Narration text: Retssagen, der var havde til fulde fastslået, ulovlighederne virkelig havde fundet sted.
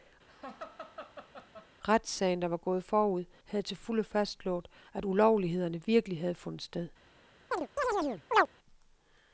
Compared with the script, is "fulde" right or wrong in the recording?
right